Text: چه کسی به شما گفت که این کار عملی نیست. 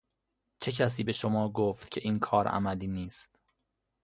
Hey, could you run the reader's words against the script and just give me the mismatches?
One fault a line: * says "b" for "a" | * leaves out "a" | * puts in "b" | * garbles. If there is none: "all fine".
all fine